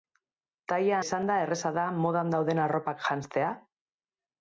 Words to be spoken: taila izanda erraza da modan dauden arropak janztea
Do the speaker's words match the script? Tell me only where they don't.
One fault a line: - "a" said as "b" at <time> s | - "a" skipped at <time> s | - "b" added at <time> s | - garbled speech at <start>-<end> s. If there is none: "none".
none